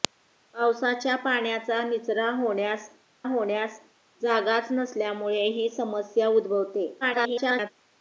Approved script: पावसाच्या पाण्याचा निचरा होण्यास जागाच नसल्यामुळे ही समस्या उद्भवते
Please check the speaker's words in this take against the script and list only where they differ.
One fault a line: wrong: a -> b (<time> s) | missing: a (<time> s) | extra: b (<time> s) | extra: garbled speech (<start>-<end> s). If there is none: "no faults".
extra: होण्यास (3.2 s)
extra: garbled speech (7.0-7.7 s)